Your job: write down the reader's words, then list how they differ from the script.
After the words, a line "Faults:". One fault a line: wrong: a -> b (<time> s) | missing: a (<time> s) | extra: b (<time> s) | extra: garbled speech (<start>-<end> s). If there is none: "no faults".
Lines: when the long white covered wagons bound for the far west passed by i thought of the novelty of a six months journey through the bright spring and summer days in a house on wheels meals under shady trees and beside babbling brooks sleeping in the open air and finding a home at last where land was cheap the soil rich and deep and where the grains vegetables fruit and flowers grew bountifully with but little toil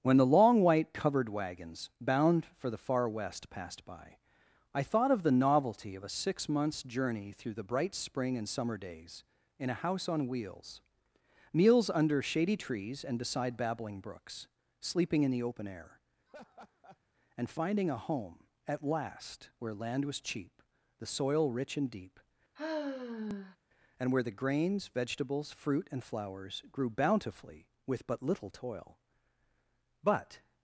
when the long white covered wagons bound for the far west passed by i thought of the novelty of a six months journey through the bright spring and summer days in a house on wheels meals under shady trees and beside babbling brooks sleeping in the open air and finding a home at last where land was cheap the soil rich and deep and where the grains vegetables fruit and flowers grew bountifully with but little toil but
Faults:
extra: but (30.0 s)